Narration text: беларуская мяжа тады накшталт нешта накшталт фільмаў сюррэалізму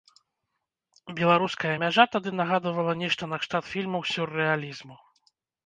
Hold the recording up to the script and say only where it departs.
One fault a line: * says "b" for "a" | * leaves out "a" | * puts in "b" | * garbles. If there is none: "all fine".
* says "нагадвала" for "накшталт"